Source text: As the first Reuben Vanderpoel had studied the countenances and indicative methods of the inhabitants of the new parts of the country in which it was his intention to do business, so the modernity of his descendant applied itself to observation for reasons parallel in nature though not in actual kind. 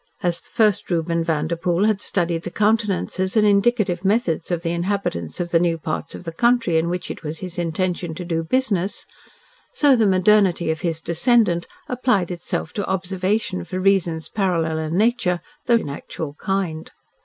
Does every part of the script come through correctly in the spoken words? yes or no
no